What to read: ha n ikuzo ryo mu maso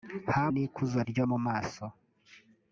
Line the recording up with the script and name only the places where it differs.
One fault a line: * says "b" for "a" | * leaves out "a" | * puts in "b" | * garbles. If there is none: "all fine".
all fine